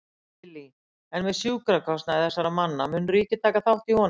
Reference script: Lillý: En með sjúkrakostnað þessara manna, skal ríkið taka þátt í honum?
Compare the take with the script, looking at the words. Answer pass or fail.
fail